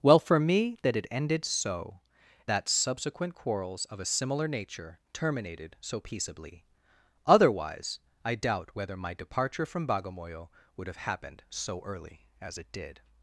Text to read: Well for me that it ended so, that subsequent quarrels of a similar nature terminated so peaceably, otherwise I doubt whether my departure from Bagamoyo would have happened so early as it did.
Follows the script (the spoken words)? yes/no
yes